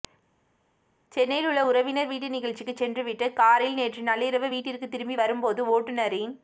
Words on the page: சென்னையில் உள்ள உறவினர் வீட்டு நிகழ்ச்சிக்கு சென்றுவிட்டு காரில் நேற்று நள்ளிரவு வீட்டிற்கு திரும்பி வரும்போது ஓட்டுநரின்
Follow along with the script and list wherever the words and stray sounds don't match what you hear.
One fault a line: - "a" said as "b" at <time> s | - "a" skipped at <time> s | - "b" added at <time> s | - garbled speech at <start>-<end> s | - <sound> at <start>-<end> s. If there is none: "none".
none